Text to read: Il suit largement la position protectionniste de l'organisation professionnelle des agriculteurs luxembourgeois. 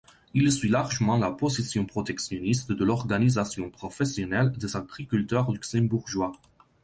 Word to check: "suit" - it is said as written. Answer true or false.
true